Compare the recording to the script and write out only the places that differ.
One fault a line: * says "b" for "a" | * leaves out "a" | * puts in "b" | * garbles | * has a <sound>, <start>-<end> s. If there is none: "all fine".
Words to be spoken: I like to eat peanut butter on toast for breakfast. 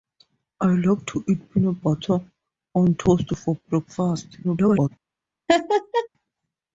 * garbles
* has a laugh, 5.5-6.1 s